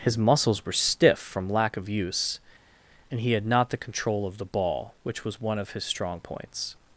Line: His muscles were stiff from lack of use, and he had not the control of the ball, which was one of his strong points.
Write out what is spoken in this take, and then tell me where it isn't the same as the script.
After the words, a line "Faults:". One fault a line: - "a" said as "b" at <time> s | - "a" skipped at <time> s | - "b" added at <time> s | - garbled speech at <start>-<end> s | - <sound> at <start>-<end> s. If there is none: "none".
His muscles were stiff from lack of use, and he had not the control of the ball, which was one of his strong points.
Faults:
none